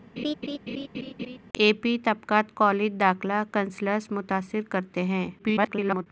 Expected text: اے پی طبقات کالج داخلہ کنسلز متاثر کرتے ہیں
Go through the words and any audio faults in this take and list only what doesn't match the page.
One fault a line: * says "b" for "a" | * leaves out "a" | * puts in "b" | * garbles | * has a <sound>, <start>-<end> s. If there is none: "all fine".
* has a laugh, 0.2-1.4 s
* garbles